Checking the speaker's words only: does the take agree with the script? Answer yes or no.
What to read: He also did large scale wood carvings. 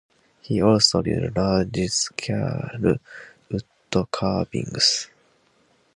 yes